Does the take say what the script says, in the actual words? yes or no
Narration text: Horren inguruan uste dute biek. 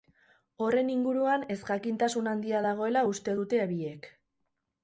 no